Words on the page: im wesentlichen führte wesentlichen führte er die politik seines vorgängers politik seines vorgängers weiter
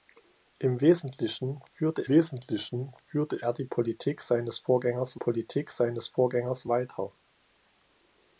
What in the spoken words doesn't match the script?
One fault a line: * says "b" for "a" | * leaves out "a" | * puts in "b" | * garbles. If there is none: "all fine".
all fine